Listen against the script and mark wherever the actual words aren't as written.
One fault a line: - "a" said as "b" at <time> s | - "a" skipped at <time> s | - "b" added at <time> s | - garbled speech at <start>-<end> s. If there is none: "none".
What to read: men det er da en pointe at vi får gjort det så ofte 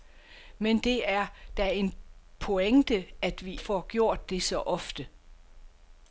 none